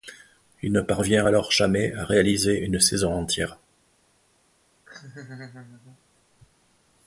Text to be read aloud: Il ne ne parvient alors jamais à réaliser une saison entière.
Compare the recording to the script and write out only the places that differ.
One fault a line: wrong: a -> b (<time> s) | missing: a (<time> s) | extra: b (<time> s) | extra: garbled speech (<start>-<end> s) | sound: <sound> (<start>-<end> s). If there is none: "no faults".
missing: ne (0.8 s)
sound: laugh (4.9-6.0 s)